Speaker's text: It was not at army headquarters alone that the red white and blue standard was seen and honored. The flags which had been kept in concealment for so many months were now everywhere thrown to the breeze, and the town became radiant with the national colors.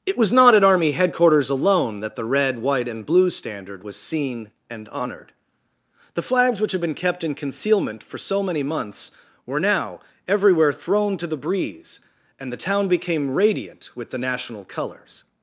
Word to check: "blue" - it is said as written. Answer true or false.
true